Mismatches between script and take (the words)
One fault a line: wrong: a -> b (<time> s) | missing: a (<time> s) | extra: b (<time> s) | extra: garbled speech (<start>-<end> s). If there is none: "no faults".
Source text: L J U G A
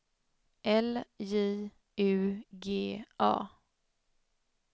no faults